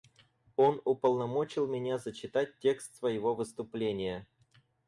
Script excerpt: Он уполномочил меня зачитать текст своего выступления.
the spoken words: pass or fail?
pass